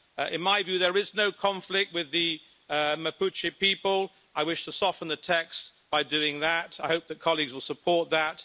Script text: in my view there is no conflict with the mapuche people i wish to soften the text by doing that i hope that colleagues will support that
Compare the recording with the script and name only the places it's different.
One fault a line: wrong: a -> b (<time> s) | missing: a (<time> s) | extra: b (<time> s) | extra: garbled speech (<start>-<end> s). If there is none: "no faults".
no faults